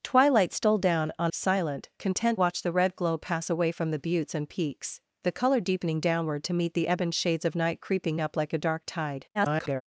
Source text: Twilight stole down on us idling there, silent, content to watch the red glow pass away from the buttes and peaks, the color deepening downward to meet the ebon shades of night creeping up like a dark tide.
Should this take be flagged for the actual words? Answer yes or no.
yes